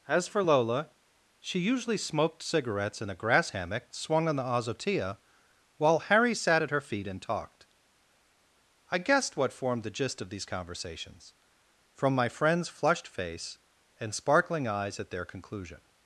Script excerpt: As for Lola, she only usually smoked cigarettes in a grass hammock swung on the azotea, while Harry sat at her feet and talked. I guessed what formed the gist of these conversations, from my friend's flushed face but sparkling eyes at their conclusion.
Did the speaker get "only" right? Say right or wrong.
wrong